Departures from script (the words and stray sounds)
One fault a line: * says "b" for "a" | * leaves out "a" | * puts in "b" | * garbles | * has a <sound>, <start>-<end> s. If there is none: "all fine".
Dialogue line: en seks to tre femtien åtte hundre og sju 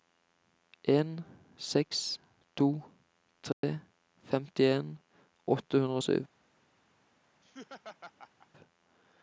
* has a dropout, 3.5-3.6 s
* has a laugh, 7.4-8.5 s